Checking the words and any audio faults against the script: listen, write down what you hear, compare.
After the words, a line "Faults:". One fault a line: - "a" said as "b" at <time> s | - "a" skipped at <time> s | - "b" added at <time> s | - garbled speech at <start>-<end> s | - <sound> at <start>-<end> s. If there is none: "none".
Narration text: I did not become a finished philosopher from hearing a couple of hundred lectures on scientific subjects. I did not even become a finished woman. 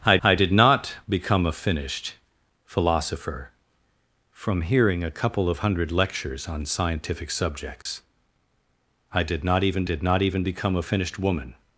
I I did not become a finished philosopher from hearing a couple of hundred lectures on scientific subjects. I did not even did not even become a finished woman.
Faults:
- "I" added at 0.2 s
- dropout at 7.8-7.9 s
- "did not even" added at 9.8 s